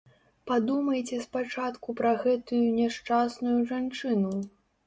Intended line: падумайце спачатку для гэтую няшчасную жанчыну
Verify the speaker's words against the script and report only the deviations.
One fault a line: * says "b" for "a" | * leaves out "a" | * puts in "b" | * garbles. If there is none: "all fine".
* says "пра" for "для"